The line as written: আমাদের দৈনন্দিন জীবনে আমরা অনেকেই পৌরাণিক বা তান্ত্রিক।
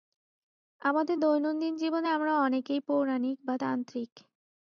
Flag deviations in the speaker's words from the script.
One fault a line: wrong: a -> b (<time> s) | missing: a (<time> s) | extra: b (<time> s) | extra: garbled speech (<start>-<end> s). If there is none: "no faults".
no faults